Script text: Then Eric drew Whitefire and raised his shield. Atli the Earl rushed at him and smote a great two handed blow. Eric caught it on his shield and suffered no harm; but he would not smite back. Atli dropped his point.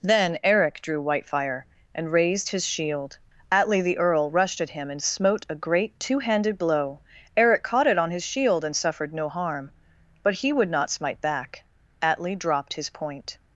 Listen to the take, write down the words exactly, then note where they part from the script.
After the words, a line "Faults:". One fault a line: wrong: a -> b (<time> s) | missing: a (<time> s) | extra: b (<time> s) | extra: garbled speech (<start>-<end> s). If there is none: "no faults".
Then Eric drew Whitefire and raised his shield. Atli the Earl rushed at him and smote a great two handed blow. Eric caught it on his shield and suffered no harm; but he would not smite back. Atli dropped his point.
Faults:
no faults